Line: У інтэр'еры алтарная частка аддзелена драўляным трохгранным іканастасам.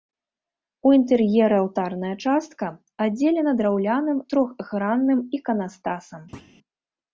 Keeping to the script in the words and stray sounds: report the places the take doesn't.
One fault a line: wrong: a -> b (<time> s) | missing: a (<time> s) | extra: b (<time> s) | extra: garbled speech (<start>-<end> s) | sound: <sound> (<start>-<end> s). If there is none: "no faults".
sound: thud (6.3-6.6 s)